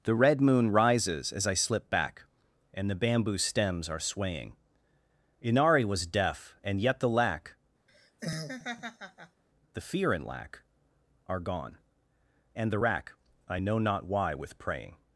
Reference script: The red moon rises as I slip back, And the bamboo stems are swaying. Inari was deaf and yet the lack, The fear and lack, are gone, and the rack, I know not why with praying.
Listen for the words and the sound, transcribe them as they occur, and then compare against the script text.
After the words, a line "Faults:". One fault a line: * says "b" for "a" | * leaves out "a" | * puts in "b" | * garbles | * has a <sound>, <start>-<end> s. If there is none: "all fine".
The red moon rises as I slip back, And the bamboo stems are swaying. Inari was deaf and yet the lack, The fear and lack, are gone, and the rack, I know not why with praying.
Faults:
* has a laugh, 7.9-9.4 s